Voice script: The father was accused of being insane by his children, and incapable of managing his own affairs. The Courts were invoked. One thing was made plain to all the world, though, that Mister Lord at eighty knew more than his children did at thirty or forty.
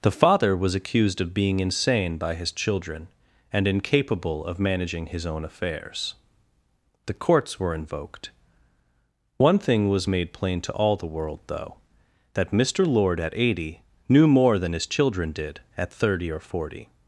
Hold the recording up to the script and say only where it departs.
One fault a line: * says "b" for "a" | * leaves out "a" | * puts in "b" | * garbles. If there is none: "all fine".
all fine